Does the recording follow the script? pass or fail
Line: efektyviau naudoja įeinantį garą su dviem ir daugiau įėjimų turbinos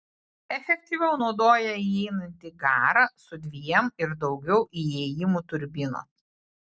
pass